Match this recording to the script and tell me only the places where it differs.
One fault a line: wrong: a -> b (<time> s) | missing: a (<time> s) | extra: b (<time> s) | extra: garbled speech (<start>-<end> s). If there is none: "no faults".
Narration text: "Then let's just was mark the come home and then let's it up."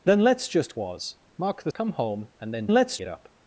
no faults